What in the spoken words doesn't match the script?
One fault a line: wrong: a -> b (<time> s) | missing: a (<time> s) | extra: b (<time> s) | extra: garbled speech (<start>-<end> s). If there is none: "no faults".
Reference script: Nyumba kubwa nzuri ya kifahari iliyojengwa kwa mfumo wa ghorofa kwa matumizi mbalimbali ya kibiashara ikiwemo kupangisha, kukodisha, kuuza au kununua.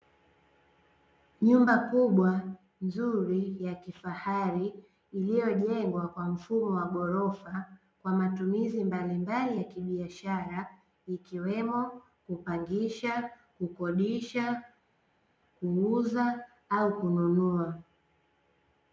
no faults